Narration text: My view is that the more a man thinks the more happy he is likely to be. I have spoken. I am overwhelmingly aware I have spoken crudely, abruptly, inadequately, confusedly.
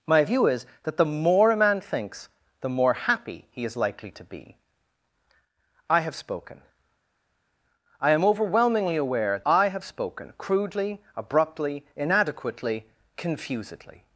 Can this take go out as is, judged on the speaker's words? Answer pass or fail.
pass